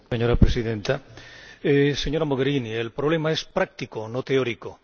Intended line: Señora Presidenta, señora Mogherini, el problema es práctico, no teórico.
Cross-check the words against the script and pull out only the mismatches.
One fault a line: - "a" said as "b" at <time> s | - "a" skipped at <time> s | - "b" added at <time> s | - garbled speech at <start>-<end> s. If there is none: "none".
none